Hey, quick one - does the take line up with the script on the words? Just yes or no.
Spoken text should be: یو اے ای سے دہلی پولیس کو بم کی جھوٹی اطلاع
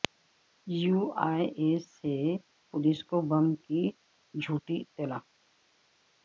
no